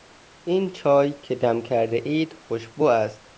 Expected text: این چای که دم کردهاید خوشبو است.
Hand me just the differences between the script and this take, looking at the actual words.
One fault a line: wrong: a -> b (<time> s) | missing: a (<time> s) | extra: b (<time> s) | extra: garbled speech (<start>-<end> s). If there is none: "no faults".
no faults